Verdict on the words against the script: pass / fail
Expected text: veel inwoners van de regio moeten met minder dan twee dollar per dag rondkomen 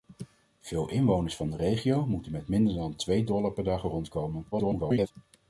fail